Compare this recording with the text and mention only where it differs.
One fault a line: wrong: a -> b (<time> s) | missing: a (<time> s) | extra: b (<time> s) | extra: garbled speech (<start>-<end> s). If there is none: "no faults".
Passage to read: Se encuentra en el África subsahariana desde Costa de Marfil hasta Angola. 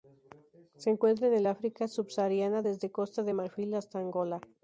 no faults